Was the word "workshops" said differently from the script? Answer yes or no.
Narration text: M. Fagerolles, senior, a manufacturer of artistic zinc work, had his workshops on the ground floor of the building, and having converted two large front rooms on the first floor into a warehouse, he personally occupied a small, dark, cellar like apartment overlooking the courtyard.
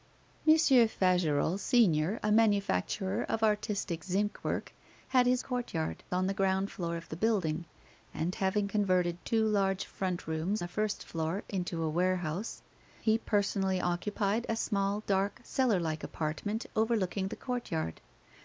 yes